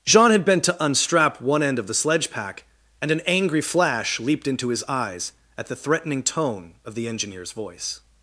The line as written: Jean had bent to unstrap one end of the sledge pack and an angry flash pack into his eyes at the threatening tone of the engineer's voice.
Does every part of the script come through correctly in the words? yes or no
no